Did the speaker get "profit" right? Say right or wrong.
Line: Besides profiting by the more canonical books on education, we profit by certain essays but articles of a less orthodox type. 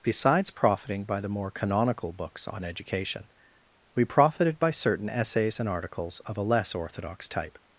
wrong